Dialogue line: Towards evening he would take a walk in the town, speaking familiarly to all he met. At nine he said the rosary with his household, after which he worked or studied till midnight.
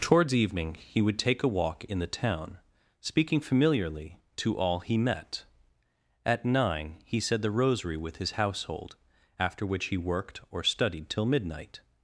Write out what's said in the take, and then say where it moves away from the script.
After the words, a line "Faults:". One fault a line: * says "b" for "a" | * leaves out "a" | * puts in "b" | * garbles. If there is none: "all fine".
Towards evening he would take a walk in the town, speaking familiarly to all he met. At nine he said the rosary with his household, after which he worked or studied till midnight.
Faults:
all fine